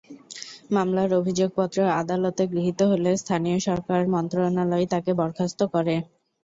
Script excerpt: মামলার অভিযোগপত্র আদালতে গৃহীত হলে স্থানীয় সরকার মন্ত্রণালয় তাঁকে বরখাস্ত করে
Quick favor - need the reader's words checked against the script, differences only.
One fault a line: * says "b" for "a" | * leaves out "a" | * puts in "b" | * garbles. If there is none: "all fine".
all fine